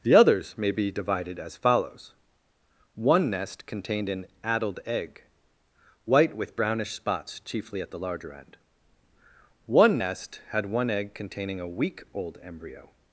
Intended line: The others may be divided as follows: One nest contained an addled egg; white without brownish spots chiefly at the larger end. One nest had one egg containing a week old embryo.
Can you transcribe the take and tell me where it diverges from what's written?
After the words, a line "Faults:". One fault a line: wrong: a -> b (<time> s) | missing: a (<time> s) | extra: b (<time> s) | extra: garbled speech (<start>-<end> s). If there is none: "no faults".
The others may be divided as follows: One nest contained an addled egg; white with brownish spots chiefly at the larger end. One nest had one egg containing a week old embryo.
Faults:
wrong: without -> with (6.3 s)